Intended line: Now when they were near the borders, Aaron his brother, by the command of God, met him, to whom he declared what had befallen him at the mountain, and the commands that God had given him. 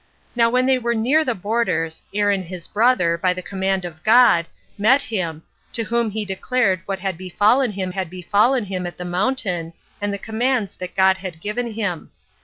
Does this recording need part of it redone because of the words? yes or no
yes